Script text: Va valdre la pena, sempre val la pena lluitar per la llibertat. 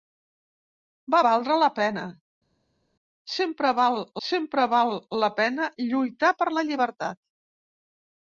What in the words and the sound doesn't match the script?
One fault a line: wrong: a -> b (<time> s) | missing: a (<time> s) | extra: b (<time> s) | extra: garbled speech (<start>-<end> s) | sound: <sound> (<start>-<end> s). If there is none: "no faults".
extra: sempre val (4.3 s)